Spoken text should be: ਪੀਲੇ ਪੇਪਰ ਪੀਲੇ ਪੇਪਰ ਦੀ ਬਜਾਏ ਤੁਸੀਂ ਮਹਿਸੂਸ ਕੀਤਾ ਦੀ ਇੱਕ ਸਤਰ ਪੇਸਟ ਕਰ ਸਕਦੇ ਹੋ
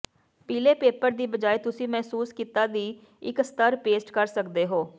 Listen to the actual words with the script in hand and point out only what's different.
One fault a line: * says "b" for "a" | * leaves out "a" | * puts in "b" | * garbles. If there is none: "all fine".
* leaves out "ਪੀਲੇ ਪੇਪਰ"